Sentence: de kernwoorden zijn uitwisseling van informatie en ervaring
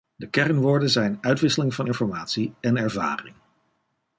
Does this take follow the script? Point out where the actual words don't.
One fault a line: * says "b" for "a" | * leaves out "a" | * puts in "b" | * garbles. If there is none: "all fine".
all fine